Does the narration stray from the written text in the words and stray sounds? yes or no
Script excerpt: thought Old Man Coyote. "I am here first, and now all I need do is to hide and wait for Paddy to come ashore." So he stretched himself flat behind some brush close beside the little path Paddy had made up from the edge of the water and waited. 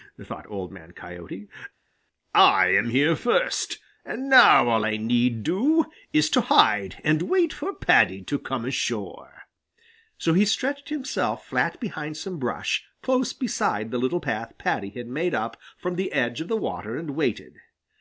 no